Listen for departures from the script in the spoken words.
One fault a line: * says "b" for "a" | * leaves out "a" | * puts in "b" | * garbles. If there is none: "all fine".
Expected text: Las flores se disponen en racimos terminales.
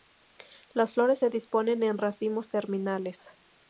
all fine